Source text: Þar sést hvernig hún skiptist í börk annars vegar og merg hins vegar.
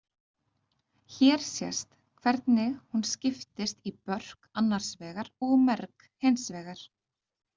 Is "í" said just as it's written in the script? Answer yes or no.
yes